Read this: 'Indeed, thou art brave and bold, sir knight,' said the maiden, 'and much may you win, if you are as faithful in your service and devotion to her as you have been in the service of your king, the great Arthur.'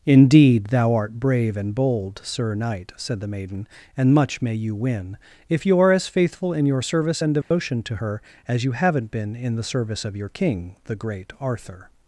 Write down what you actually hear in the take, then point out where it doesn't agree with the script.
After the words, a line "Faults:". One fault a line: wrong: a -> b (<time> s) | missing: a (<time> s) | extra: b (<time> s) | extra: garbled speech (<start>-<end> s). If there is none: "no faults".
'Indeed, thou art brave and bold, sir knight,' said the maiden, 'and much may you win, if you are as faithful in your service and devotion to her as you haven't been in the service of your king, the great Arthur.'
Faults:
wrong: have -> haven't (8.7 s)